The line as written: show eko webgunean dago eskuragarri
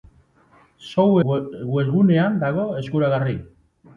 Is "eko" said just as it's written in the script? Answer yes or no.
no